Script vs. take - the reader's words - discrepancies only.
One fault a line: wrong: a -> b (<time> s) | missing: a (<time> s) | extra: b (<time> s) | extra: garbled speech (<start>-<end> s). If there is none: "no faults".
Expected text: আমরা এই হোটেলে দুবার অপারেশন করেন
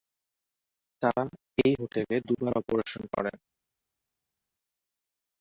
wrong: আমরা -> তারা (1.0 s)